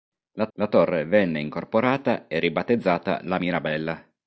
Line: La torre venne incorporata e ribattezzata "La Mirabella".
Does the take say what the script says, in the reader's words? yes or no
no